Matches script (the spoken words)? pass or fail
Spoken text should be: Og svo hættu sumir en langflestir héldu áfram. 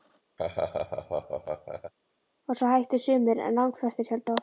pass